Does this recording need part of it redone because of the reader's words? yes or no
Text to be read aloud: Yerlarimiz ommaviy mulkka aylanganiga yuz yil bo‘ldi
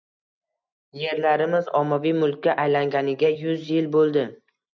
no